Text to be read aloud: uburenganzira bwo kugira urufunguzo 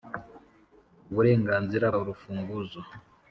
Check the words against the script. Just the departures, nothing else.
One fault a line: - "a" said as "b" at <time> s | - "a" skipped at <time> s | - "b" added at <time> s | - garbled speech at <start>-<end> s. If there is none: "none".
- "bwo kugira" skipped at 1.9 s